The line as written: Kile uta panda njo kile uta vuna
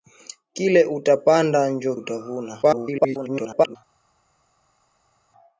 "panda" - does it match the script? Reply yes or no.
yes